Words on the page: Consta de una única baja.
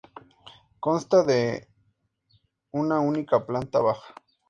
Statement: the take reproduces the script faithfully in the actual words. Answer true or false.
false